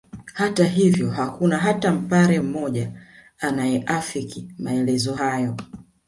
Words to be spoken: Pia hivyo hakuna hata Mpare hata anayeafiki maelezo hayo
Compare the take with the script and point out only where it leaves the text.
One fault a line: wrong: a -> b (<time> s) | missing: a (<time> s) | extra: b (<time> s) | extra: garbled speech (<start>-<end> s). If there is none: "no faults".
wrong: Pia -> Hata (0.3 s)
wrong: hata -> mmoja (2.4 s)